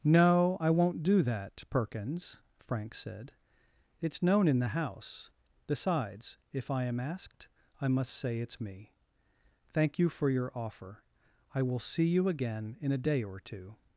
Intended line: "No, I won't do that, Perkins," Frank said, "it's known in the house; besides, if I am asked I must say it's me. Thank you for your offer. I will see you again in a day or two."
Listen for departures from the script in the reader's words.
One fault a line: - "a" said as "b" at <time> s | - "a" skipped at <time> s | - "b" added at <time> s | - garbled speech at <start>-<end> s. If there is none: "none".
none